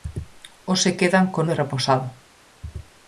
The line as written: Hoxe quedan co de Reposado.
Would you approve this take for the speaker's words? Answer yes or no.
yes